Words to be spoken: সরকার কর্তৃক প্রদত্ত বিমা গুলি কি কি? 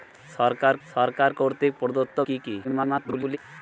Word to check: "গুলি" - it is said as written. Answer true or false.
false